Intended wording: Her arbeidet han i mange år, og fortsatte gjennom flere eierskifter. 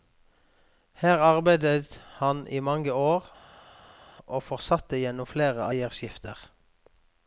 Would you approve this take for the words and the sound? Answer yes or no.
yes